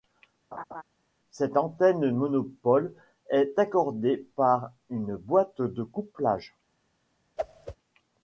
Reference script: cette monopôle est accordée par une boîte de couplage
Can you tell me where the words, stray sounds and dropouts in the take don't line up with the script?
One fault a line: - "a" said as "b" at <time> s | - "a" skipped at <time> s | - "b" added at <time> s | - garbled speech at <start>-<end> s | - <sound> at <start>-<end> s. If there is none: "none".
- laugh at 0.5-0.8 s
- "antenne" added at 1.6 s
- whoosh at 7.4-7.8 s